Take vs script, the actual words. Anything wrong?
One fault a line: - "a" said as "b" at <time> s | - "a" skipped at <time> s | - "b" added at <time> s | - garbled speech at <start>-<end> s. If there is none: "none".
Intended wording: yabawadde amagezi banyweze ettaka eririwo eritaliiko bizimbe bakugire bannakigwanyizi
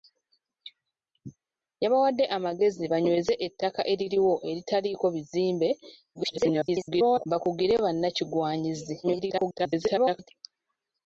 - garbled speech at 6.1-7.3 s
- garbled speech at 9.0-10.3 s